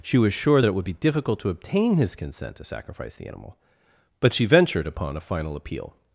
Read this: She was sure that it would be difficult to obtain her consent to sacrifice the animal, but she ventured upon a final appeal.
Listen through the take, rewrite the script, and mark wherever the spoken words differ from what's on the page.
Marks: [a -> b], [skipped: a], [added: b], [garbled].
She was sure that it would be difficult to obtain [her -> his] consent to sacrifice the animal, but she ventured upon a final appeal.